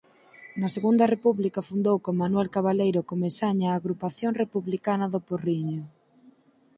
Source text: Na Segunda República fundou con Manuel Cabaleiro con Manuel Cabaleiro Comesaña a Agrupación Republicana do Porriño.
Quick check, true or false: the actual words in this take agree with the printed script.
false